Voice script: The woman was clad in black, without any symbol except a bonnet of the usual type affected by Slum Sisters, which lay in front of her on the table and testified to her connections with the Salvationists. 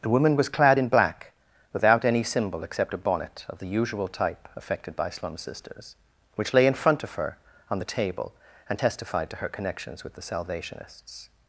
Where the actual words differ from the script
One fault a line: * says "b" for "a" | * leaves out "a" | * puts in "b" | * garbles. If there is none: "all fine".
all fine